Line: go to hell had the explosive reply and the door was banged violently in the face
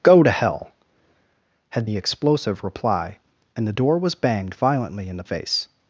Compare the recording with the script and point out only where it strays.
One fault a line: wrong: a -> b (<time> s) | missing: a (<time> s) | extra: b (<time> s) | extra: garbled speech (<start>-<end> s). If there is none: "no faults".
no faults